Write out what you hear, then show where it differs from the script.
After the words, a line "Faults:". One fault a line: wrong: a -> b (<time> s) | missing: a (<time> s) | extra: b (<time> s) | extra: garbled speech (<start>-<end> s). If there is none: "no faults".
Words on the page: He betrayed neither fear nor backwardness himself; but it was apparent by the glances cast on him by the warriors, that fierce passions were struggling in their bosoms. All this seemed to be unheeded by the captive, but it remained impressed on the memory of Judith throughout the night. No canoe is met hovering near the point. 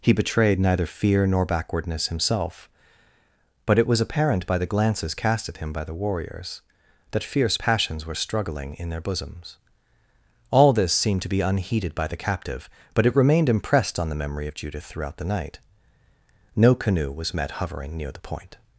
He betrayed neither fear nor backwardness himself; but it was apparent by the glances cast at him by the warriors, that fierce passions were struggling in their bosoms. All this seemed to be unheeded by the captive, but it remained impressed on the memory of Judith throughout the night. No canoe was met hovering near the point.
Faults:
wrong: on -> at (5.5 s)
wrong: is -> was (17.1 s)